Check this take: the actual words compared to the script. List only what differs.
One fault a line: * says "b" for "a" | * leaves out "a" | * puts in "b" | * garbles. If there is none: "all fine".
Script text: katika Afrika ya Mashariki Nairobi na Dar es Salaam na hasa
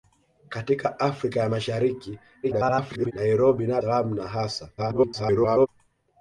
* garbles
* leaves out "Dar es"
* garbles